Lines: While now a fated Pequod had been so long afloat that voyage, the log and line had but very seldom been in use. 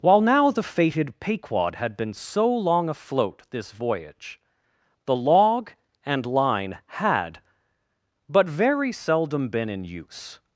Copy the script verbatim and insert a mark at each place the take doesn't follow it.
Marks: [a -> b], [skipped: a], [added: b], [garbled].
While now [a -> the] fated Pequod had been so long afloat [that -> this] voyage, the log and line had but very seldom been in use.